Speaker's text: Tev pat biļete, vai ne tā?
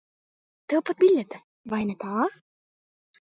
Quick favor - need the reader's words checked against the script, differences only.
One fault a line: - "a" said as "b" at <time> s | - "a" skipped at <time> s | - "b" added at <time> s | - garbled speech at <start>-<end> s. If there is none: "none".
none